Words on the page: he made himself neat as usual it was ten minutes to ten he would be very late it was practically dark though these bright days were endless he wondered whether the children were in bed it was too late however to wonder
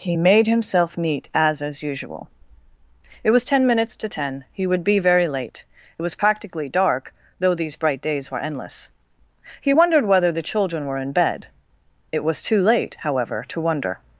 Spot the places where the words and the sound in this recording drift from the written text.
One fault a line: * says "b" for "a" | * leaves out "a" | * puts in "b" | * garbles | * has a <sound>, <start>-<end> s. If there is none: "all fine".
* puts in "as"